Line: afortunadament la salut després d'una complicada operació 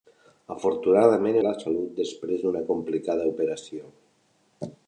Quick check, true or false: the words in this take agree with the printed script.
true